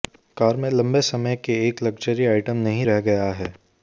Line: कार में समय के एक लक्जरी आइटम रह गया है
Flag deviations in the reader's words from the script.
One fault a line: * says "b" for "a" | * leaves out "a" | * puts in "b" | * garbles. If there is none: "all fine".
* puts in "लंबे"
* puts in "नहीं"